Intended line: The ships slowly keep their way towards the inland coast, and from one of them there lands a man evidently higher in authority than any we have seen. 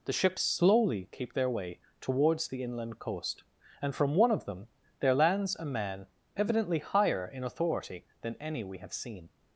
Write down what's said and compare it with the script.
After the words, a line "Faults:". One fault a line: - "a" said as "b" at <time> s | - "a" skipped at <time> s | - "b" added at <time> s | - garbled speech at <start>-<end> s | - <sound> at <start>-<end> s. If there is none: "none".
The ships slowly keep their way towards the inland coast, and from one of them there lands a man evidently higher in authority than any we have seen.
Faults:
none